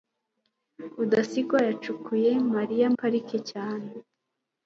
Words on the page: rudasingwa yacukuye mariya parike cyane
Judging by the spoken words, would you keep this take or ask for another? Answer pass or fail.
pass